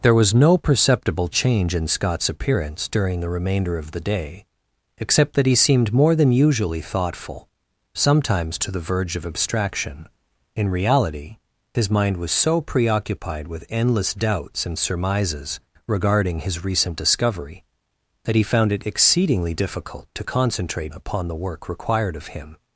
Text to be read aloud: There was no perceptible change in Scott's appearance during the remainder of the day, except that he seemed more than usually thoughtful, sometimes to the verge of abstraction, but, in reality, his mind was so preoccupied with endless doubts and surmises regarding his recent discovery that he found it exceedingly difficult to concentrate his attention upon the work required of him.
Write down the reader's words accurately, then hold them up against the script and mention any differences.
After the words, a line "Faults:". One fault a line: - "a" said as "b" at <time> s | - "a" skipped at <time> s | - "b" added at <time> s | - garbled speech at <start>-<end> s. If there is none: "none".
There was no perceptible change in Scott's appearance during the remainder of the day, except that he seemed more than usually thoughtful, sometimes to the verge of abstraction, in reality, his mind was so preoccupied with endless doubts and surmises regarding his recent discovery that he found it exceedingly difficult to concentrate upon the work required of him.
Faults:
- "but" skipped at 10.1 s
- "his attention" skipped at 20.9 s